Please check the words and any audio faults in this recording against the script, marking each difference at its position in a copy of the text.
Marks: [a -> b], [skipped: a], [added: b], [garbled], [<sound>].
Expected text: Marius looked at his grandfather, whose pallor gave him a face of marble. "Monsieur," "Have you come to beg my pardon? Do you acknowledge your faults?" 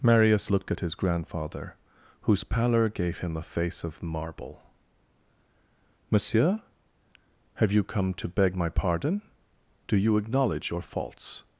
Marius looked at his grandfather, whose pallor gave him a face of marble. "Monsieur," "Have you come to beg my pardon? Do you acknowledge your faults?"